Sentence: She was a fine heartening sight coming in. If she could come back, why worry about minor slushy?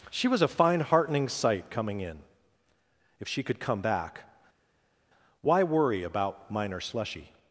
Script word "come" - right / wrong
right